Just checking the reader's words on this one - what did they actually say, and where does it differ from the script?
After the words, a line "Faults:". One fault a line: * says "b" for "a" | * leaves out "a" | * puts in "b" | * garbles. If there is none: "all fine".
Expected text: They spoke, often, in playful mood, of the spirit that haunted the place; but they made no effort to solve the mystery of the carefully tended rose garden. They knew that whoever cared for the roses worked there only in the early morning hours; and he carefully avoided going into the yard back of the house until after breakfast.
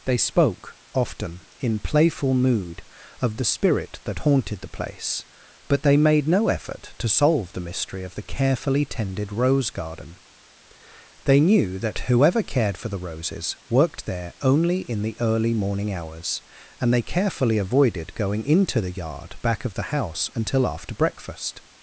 They spoke, often, in playful mood, of the spirit that haunted the place; but they made no effort to solve the mystery of the carefully tended rose garden. They knew that whoever cared for the roses worked there only in the early morning hours; and they carefully avoided going into the yard back of the house until after breakfast.
Faults:
* says "they" for "he"